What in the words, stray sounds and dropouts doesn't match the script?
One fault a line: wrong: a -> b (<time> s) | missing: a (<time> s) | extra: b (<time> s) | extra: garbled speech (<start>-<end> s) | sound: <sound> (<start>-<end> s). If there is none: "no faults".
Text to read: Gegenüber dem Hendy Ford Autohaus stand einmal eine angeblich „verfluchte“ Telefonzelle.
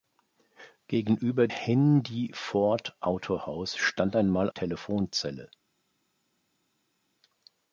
missing: dem (1.5 s)
missing: eine angeblich verfluchte (4.5 s)